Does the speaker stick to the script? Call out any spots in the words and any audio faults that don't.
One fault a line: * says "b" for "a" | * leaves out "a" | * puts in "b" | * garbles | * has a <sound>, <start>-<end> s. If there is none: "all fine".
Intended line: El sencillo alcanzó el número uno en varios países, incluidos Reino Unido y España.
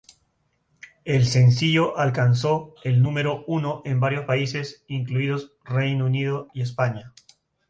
all fine